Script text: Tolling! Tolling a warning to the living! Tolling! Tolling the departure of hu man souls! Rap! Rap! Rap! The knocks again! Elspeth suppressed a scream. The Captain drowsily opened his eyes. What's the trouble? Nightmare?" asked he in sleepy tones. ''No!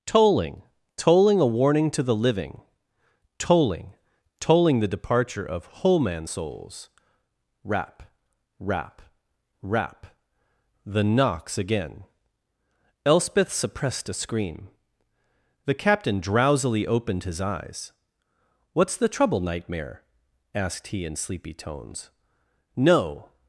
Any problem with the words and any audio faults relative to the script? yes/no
yes